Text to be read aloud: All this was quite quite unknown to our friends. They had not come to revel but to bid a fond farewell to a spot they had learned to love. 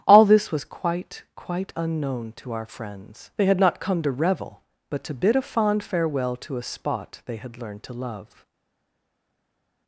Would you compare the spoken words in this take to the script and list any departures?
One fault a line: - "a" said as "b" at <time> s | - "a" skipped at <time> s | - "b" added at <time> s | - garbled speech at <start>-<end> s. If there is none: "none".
none